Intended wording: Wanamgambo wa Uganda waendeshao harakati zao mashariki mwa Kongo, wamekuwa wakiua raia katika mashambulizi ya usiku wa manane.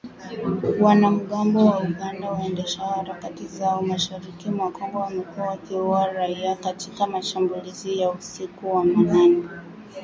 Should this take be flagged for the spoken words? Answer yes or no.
no